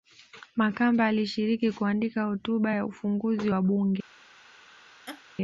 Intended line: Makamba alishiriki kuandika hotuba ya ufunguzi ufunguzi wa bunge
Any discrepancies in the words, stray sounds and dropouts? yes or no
yes